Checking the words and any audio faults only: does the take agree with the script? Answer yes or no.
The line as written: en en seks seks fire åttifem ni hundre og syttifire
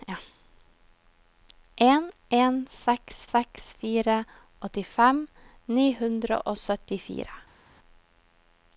yes